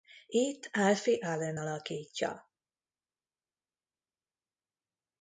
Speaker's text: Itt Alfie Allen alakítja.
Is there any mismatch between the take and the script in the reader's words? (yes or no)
no